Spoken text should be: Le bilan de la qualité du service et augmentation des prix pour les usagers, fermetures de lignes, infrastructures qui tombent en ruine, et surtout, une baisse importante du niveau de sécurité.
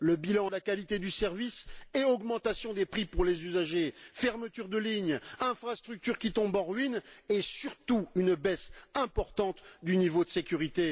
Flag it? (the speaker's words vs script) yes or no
no